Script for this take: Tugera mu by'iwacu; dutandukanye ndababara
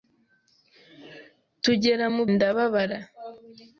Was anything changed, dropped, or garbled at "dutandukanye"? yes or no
yes